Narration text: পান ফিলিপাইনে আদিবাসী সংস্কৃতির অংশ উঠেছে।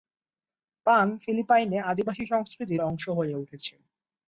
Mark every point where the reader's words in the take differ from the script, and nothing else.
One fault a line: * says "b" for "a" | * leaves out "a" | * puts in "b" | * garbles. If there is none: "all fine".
* puts in "হয়ে"